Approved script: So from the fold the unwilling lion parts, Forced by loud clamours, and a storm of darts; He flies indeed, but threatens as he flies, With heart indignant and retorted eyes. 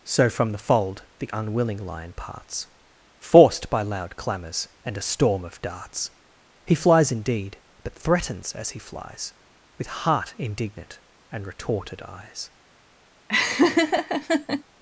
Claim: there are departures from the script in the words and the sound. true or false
true